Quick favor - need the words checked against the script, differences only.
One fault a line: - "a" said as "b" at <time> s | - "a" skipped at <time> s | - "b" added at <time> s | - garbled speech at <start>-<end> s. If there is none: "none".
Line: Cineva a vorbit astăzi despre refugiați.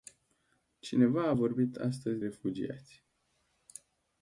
- "despre" skipped at 2.2 s